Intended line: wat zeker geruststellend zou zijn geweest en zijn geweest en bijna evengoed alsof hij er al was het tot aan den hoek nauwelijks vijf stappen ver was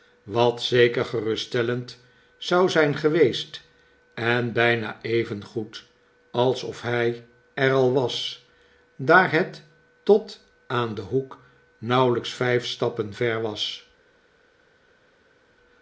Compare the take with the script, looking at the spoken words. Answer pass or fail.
fail